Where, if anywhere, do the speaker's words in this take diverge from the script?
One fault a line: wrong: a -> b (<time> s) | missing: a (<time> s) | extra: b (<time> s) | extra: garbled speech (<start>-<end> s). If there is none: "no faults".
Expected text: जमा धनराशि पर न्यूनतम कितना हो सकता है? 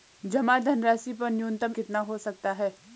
no faults